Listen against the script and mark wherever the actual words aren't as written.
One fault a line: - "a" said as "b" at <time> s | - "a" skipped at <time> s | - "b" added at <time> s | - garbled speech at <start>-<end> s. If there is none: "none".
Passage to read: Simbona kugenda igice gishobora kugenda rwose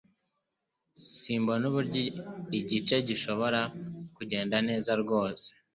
- "kugenda" said as "uburyo" at 1.7 s
- "neza" added at 4.7 s